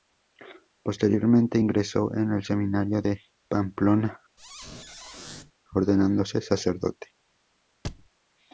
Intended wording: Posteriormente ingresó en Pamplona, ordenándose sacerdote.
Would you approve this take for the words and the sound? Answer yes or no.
no